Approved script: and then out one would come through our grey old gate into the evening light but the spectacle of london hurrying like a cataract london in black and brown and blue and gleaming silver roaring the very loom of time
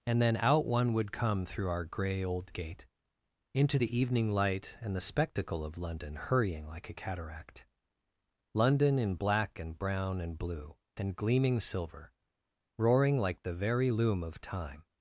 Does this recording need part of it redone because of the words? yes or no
yes